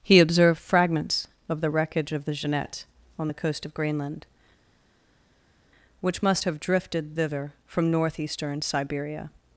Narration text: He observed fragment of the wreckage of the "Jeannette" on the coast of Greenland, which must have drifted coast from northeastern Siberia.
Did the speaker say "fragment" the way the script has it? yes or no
no